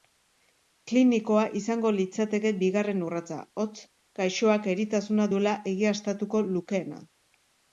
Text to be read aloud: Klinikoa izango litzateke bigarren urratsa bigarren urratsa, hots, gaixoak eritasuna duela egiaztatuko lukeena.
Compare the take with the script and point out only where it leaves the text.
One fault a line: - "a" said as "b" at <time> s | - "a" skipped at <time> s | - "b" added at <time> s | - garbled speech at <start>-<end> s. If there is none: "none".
- "bigarren urratsa" skipped at 3.4 s